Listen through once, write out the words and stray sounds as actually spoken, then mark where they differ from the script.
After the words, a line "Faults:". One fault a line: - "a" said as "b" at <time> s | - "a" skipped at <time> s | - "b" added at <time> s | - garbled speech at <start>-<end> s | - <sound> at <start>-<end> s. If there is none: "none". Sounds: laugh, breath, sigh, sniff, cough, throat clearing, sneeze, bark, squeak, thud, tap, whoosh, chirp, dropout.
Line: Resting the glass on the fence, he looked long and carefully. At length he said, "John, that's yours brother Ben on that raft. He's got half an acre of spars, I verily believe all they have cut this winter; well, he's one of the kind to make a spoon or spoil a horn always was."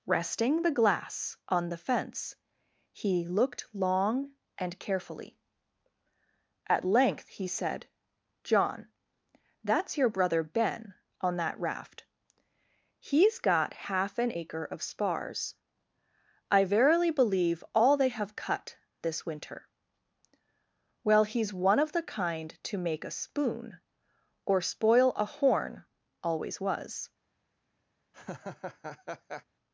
Resting the glass on the fence, he looked long and carefully. At length he said, "John, that's your brother Ben on that raft. He's got half an acre of spars, I verily believe all they have cut this winter; well, he's one of the kind to make a spoon or spoil a horn always was."
Faults:
- "yours" said as "your" at 10.0 s
- laugh at 28.1-29.4 s